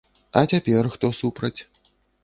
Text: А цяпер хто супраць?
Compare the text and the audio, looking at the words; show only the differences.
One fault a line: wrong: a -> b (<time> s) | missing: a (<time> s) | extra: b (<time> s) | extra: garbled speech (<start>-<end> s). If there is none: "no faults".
no faults